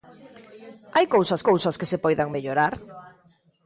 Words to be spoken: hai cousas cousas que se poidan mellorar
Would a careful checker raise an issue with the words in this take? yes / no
no